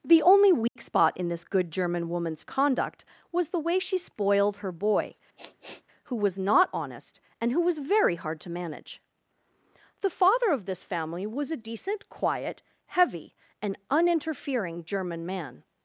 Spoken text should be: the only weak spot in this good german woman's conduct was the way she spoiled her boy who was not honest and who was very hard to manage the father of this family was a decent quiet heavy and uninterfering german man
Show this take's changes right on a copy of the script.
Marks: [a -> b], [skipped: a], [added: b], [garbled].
the only weak spot in this good german woman's conduct was the way she spoiled her boy who was not honest and who was very hard to manage the father of this family was a decent quiet heavy and uninterfering german man